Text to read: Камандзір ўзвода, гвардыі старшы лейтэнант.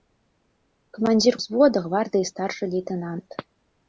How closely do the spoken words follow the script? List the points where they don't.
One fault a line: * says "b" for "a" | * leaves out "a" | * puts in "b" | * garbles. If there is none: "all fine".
all fine